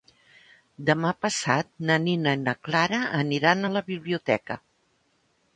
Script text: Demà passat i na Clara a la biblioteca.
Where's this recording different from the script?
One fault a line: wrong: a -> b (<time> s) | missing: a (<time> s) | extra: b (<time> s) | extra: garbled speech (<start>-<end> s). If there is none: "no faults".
extra: na Nina (1.9 s)
extra: aniran (3.2 s)